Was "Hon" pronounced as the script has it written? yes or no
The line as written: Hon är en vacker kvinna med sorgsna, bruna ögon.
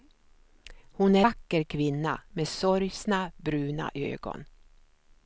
yes